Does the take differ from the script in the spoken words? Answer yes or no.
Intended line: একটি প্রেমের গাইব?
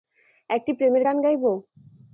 yes